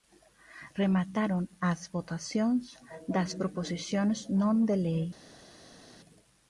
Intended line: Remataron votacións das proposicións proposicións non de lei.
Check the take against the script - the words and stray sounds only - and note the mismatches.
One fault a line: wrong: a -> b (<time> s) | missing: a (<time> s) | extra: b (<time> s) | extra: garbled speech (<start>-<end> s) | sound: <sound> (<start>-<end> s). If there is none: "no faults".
extra: as (1.7 s)
missing: proposicións (4.2 s)